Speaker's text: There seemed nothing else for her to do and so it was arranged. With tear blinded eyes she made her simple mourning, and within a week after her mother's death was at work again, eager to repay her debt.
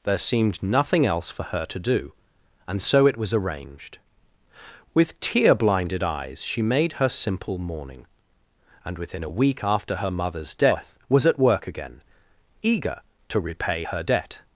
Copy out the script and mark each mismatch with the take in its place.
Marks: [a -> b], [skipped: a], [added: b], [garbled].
There seemed nothing else for her to do and so it was arranged. With tear blinded eyes she made her simple mourning, and within a week after her mother's death was at work again, eager to repay her debt.